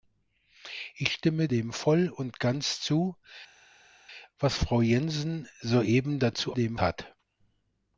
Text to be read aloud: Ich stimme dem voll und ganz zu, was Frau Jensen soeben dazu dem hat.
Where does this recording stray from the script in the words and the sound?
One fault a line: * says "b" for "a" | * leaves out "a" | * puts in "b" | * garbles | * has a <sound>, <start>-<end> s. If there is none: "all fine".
all fine